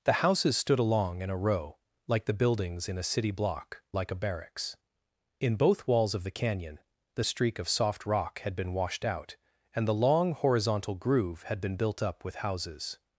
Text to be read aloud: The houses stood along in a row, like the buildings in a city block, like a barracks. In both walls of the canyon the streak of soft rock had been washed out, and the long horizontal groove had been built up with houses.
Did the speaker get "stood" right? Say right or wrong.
right